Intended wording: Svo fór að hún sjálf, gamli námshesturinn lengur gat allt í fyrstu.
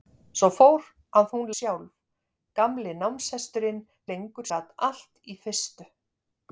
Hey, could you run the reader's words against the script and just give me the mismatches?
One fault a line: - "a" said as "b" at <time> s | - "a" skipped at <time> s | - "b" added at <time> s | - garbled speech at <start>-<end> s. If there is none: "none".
none